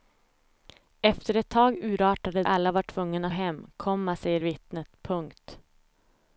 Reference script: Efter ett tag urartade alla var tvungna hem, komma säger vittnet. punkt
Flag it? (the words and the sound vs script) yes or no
no